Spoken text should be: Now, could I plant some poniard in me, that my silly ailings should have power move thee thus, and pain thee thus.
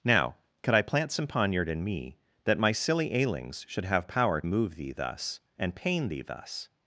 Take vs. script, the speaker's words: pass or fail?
pass